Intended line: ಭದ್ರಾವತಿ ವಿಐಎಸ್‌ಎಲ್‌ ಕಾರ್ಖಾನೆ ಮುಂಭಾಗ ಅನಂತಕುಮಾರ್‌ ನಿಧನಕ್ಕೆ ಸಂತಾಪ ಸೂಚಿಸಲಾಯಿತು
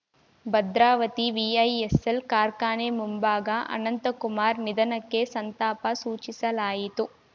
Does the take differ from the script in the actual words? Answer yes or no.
no